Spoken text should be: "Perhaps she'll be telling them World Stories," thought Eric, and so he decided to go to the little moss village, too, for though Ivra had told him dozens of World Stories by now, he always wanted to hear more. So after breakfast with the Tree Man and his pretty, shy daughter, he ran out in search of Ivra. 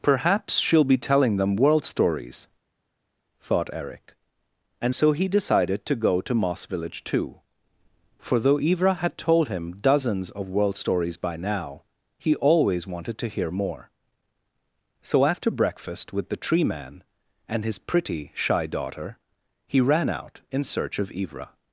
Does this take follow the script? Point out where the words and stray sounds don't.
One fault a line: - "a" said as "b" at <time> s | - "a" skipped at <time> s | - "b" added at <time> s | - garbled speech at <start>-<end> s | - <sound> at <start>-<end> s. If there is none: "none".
- "the little" skipped at 6.3 s